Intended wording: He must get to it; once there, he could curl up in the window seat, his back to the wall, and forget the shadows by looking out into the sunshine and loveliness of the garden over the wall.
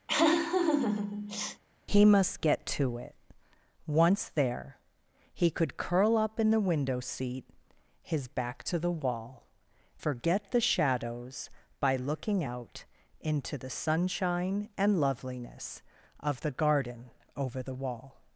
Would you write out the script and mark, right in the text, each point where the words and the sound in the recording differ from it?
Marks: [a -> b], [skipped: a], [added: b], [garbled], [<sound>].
[laugh] He must get to it; once there, he could curl up in the window seat, his back to the wall, [skipped: and] forget the shadows by looking out into the sunshine and loveliness of the garden over the wall.